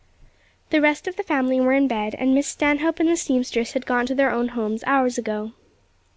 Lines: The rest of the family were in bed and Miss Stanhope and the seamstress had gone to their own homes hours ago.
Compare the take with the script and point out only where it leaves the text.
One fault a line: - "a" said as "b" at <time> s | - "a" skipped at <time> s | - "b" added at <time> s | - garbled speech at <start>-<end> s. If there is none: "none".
none